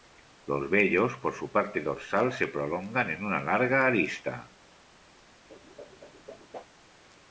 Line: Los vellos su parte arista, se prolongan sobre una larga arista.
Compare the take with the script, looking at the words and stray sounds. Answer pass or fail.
fail